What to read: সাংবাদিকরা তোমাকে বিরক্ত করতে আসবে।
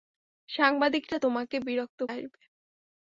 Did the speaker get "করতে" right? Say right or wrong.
wrong